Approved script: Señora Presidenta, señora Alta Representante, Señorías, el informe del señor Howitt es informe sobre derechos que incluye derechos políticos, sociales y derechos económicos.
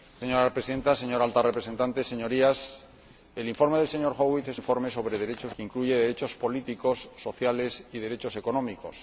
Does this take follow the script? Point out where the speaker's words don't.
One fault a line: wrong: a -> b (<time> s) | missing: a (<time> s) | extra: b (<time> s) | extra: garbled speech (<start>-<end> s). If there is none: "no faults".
no faults